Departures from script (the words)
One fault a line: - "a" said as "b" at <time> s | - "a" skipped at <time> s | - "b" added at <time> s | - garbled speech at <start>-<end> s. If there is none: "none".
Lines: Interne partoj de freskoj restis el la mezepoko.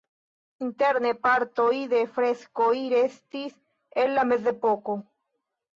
none